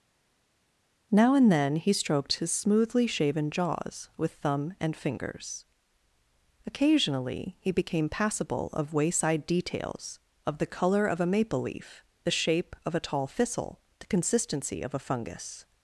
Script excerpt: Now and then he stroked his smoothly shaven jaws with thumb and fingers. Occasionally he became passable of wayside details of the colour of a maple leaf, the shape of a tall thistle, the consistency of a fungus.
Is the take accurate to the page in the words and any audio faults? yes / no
yes